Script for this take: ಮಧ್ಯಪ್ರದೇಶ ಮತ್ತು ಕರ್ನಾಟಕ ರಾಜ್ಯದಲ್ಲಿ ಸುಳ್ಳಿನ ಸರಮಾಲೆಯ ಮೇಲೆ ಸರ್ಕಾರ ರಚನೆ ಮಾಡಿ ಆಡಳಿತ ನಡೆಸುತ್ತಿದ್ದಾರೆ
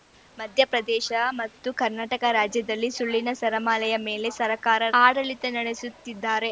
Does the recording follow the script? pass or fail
fail